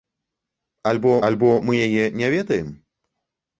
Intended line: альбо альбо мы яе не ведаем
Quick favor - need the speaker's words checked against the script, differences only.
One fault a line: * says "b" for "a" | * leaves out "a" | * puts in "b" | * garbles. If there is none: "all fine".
all fine